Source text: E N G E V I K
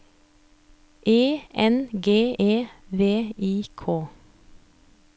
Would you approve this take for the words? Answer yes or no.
yes